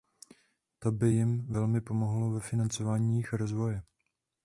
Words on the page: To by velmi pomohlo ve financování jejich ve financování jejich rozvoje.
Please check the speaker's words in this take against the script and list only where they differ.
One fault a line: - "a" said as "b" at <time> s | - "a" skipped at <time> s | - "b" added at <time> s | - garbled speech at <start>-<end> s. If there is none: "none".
- "jim" added at 1.1 s
- "ve financování jejich" skipped at 3.3 s